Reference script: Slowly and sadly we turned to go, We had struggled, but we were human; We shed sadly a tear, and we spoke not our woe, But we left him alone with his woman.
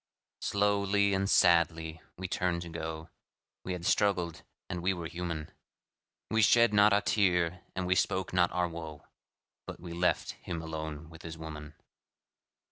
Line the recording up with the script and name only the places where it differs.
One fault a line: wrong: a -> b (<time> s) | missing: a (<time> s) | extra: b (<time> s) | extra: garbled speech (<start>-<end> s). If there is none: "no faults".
wrong: but -> and (4.7 s)
wrong: sadly -> not (6.7 s)